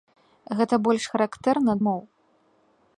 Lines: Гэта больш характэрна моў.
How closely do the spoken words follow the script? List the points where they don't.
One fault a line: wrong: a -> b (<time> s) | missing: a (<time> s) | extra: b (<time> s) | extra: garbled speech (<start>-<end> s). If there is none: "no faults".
no faults